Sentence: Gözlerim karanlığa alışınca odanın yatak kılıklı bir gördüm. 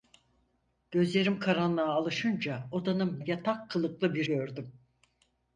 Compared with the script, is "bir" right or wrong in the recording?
right